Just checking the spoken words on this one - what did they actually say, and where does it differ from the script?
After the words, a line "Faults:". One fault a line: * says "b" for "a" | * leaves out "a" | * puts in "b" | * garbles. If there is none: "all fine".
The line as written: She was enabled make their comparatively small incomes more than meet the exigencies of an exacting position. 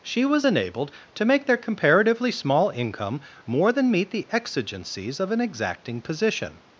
She was enabled to make their comparatively small income more than meet the exigencies of an exacting position.
Faults:
* puts in "to"
* says "income" for "incomes"